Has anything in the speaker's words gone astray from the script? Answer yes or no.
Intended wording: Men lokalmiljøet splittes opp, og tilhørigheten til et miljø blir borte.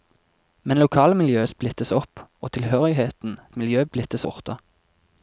yes